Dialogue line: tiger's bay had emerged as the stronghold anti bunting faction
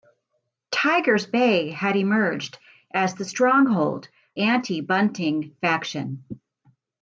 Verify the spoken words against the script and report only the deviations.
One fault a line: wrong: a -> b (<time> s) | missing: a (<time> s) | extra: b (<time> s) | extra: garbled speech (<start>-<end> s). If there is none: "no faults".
no faults